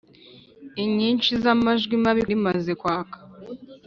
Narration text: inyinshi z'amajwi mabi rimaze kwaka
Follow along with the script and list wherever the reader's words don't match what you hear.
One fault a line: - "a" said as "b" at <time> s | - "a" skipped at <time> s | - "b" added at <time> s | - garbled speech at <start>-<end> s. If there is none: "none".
none